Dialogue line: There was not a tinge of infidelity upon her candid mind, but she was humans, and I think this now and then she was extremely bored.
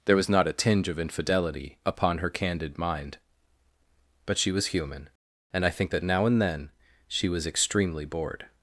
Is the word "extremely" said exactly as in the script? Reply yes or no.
yes